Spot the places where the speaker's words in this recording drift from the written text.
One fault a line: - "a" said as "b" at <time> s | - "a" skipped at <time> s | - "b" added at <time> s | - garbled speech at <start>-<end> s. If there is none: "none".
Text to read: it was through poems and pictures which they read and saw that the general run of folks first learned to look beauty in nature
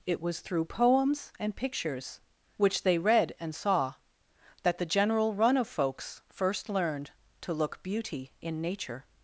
none